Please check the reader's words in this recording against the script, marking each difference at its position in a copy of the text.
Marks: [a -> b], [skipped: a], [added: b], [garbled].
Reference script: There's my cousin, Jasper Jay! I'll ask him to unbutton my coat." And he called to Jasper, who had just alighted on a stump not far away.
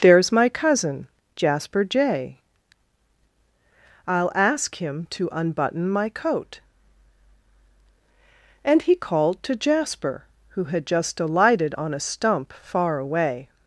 There's my cousin, Jasper Jay! I'll ask him to unbutton my coat." And he called to Jasper, who had just alighted on a stump [skipped: not] far away.